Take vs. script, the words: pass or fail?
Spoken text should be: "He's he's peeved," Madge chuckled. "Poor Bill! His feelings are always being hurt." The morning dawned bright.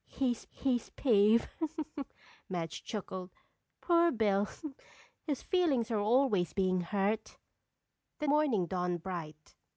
pass